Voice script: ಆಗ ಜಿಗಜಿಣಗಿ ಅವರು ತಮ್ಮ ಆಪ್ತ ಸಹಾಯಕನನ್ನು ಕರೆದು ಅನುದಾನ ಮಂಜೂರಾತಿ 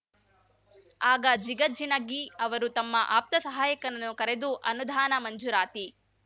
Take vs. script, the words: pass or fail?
pass